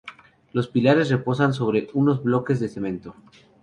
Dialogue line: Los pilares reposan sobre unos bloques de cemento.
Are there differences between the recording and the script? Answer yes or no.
no